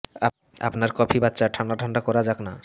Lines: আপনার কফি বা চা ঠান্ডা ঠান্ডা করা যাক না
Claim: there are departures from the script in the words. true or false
false